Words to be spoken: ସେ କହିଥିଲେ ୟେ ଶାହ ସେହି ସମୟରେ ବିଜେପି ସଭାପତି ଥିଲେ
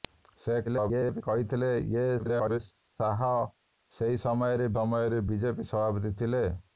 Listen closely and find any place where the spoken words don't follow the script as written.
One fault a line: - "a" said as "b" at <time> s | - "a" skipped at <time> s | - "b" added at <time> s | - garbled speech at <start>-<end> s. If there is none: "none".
- garbled speech at 0.6-1.2 s
- garbled speech at 2.2-2.6 s
- "ସମୟରେ" added at 4.7 s